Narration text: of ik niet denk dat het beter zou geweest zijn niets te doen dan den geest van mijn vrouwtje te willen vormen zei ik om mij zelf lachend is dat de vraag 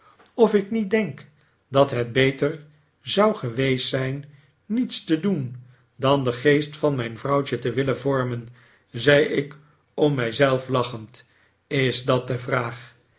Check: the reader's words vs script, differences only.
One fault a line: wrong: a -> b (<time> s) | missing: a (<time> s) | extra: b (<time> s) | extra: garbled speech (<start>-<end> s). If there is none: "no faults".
no faults